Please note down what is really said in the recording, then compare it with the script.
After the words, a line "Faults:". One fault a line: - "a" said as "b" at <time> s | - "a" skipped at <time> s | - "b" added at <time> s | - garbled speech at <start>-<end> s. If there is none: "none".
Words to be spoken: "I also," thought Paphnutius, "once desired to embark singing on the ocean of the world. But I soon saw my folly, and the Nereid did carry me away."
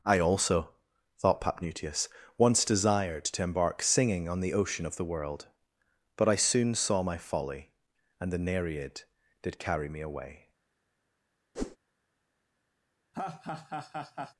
"I also," thought Paphnutius, "once desired to embark singing on the ocean of the world. But I soon saw my folly, and the Nereid did carry me away."
Faults:
none